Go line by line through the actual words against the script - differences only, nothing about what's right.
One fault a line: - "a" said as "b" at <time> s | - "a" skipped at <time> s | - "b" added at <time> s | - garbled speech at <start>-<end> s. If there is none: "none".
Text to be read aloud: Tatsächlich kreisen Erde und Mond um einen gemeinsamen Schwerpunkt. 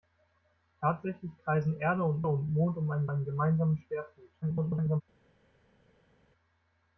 - "und" added at 2.3 s
- "einen" added at 3.1 s
- garbled speech at 4.4-5.0 s